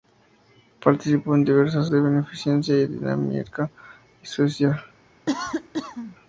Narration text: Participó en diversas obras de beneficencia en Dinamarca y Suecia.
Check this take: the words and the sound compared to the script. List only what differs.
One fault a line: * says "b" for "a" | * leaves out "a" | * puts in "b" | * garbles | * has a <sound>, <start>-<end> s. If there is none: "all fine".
* leaves out "obras"
* has a cough, 5.3-6.2 s